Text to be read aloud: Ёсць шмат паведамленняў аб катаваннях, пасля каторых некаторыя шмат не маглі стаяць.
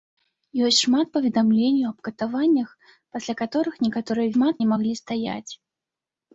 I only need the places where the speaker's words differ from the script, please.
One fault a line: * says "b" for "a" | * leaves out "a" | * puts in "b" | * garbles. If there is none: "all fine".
all fine